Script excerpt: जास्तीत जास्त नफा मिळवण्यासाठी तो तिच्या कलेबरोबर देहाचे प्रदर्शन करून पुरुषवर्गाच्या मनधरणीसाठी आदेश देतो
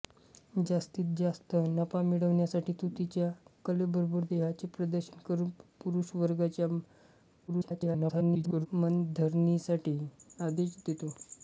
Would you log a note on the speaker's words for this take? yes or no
yes